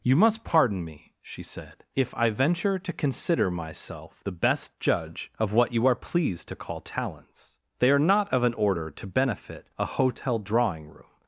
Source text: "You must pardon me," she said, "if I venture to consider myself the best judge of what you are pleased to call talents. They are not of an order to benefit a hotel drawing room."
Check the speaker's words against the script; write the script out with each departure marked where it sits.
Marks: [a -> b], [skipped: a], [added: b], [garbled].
"You must pardon me," she said, "if I venture to consider myself the best judge of what you are pleased to call talents. They are not of an order to benefit a hotel drawing room."